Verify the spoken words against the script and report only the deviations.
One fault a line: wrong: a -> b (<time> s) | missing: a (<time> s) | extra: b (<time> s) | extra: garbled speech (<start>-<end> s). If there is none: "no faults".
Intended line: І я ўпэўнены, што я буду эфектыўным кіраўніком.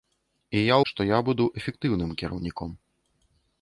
missing: ўпэўнены (0.8 s)